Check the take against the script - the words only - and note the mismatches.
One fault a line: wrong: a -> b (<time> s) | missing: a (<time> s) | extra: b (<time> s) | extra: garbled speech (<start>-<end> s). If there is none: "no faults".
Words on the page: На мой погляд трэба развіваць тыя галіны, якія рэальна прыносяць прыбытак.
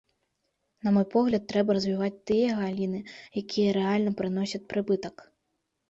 no faults